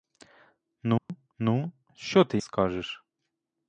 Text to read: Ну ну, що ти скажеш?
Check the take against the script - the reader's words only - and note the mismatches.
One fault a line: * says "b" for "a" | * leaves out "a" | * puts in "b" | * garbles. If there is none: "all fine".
all fine